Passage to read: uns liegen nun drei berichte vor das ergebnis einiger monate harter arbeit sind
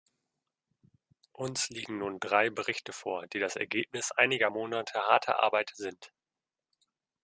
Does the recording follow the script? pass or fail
fail